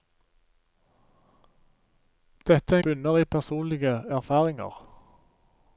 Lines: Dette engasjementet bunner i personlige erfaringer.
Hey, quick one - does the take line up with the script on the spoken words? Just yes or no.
no